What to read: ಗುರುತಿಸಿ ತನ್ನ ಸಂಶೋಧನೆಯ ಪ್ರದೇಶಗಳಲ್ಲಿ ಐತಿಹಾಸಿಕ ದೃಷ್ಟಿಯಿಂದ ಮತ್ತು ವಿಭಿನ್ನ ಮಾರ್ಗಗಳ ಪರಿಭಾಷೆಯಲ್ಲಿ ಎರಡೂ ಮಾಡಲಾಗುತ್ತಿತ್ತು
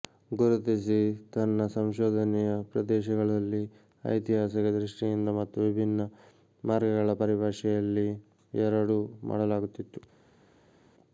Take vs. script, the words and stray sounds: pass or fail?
pass